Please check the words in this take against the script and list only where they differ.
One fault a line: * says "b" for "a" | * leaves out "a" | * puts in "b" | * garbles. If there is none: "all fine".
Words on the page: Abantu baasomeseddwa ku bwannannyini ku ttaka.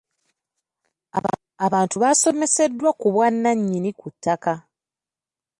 all fine